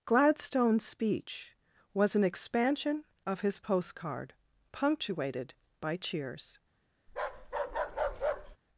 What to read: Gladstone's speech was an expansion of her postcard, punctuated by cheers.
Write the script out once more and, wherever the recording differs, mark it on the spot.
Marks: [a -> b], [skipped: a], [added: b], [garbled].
Gladstone's speech was an expansion of [her -> his] postcard, punctuated by cheers.